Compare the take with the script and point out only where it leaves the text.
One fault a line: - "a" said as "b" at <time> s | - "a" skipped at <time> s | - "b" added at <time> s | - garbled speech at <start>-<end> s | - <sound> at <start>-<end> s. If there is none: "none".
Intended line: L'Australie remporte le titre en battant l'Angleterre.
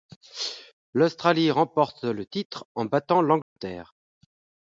- dropout at 3.4-3.6 s